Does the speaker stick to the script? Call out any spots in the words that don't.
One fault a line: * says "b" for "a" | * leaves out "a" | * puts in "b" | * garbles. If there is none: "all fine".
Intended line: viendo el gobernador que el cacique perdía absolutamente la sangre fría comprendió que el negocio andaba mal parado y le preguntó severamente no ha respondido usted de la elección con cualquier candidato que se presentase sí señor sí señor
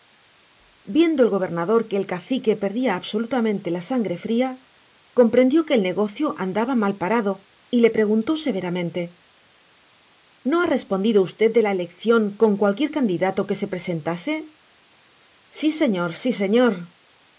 all fine